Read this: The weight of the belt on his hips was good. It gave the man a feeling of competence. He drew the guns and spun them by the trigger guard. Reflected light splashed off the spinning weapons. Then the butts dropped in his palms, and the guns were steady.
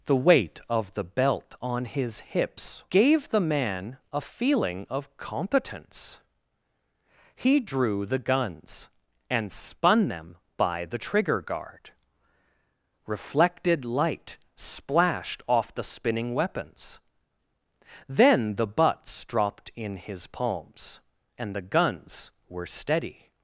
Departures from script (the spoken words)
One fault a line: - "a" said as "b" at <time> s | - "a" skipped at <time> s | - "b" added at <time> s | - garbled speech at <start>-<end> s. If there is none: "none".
- "was good It" skipped at 2.8 s